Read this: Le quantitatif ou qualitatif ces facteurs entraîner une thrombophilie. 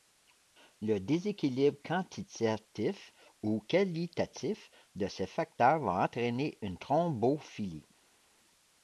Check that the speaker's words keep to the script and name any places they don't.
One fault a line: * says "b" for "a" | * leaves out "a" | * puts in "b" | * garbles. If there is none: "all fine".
* puts in "déséquilibre"
* puts in "de"
* puts in "va"